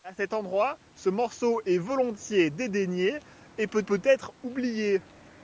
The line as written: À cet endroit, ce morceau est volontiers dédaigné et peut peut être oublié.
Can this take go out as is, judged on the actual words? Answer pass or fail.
pass